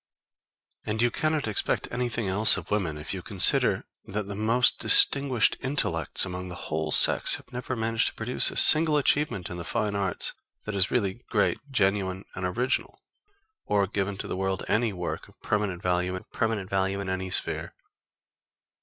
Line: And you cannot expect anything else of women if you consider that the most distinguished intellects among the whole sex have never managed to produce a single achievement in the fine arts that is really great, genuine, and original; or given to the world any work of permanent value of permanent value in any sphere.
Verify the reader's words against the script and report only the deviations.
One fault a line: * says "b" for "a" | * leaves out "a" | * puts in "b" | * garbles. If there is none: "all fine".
all fine